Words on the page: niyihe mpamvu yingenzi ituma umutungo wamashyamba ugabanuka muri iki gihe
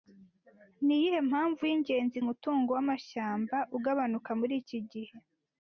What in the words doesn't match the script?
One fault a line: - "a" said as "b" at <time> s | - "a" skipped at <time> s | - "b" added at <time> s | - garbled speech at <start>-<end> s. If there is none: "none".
- "ituma" skipped at 2.2 s